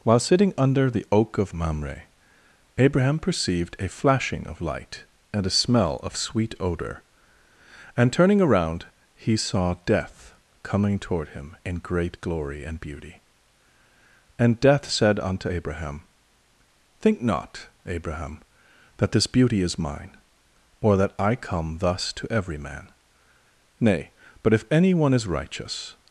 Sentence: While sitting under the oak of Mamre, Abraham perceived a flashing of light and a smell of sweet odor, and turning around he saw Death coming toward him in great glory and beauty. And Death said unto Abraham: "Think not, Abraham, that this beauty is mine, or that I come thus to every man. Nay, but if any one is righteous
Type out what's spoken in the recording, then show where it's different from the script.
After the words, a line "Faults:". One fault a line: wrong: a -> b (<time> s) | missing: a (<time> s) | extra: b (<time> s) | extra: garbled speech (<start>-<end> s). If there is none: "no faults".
While sitting under the oak of Mamre, Abraham perceived a flashing of light and a smell of sweet odor, and turning around he saw Death coming toward him in great glory and beauty. And Death said unto Abraham: "Think not, Abraham, that this beauty is mine, or that I come thus to every man. Nay, but if any one is righteous
Faults:
no faults